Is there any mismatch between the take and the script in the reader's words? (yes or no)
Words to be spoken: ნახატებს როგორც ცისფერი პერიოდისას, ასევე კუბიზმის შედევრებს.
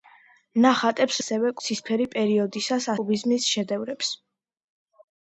yes